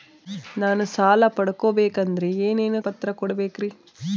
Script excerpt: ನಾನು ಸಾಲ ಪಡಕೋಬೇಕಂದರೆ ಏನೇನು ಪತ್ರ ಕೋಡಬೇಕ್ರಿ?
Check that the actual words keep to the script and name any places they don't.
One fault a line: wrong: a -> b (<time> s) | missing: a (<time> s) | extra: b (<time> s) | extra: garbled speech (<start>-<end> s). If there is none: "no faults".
no faults